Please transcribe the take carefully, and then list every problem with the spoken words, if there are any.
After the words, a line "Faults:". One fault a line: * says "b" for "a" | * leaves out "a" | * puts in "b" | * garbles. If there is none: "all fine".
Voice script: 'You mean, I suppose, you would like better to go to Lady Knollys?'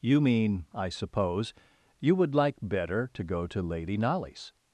'You mean, I suppose, you would like better to go to Lady Knollys?'
Faults:
all fine